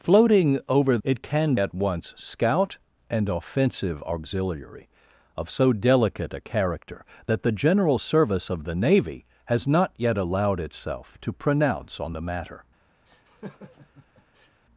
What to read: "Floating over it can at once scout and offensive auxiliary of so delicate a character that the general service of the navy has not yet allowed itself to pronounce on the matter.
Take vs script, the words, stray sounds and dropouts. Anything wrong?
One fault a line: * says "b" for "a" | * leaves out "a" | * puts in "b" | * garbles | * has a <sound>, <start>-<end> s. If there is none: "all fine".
* has a laugh, 13.1-14.6 s